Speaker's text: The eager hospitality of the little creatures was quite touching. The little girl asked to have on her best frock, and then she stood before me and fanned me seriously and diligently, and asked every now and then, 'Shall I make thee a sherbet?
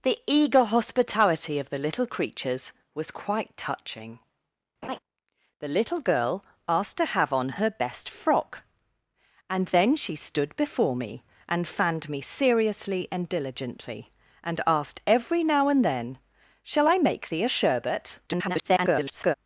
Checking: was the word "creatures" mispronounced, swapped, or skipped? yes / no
no